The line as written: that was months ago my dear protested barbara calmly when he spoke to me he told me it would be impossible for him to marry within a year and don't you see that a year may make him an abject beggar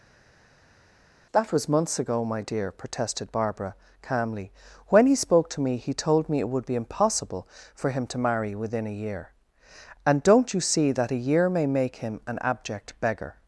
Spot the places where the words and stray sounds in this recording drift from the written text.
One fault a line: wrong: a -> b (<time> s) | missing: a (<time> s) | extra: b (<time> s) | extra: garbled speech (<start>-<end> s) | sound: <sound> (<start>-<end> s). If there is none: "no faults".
no faults